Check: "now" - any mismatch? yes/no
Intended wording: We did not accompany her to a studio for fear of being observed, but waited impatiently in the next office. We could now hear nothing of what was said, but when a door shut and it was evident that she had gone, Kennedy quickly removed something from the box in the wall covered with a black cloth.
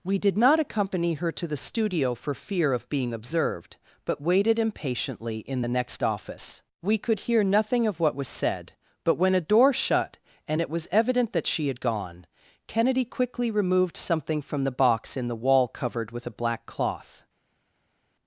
yes